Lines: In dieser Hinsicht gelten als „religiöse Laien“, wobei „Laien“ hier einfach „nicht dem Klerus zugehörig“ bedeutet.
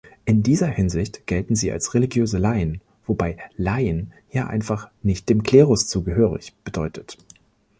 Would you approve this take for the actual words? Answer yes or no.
no